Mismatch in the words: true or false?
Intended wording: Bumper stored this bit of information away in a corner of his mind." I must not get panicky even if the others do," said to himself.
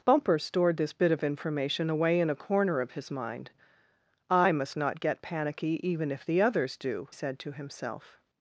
false